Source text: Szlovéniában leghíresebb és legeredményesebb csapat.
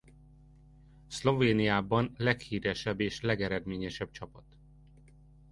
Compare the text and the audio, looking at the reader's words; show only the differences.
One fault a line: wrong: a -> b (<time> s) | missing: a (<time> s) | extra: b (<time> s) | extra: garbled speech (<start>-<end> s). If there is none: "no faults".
no faults